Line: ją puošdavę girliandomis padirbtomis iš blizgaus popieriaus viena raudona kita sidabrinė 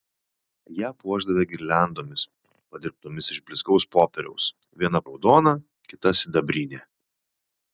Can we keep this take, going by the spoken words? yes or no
yes